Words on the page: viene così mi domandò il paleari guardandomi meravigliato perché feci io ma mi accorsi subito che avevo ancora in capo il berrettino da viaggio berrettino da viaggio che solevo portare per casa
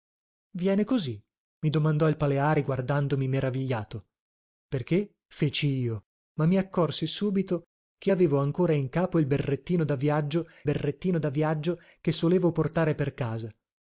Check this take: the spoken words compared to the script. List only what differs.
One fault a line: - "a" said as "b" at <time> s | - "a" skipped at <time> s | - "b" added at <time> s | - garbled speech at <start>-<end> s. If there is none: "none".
none